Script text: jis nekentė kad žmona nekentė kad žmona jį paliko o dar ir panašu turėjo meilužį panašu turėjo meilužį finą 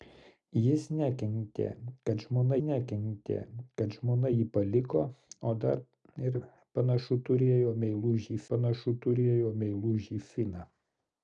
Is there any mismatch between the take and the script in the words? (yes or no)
no